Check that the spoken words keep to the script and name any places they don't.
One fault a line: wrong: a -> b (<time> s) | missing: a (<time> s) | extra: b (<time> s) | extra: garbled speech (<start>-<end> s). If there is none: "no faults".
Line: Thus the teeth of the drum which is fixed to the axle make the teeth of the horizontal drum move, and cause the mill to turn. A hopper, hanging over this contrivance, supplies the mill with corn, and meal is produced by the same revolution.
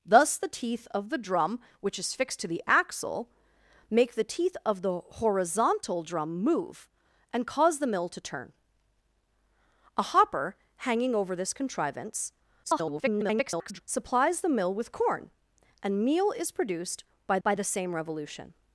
extra: garbled speech (12.6-13.8 s)
extra: by (17.4 s)